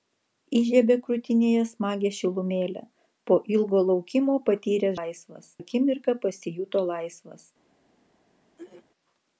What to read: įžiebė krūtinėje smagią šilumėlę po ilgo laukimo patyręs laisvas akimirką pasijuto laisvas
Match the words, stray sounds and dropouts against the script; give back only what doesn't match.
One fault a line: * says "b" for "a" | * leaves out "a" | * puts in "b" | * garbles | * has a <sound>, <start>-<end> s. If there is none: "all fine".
* has a throat clearing, 8.6-8.8 s